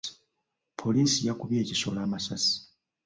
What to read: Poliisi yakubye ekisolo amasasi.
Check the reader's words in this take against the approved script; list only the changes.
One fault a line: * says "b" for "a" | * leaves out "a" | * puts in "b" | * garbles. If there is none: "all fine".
all fine